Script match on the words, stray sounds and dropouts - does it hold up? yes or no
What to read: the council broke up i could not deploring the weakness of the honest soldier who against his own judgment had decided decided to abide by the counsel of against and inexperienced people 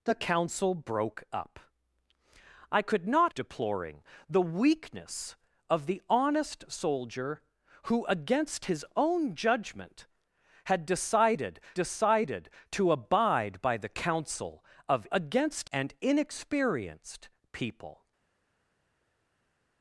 yes